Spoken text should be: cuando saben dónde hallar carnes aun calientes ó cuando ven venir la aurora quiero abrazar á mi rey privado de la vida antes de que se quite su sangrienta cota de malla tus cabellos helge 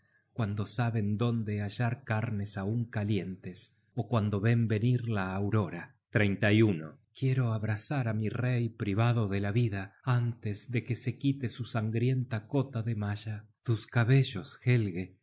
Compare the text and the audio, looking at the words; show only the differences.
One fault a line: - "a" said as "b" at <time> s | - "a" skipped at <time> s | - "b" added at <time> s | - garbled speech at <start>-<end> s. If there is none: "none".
none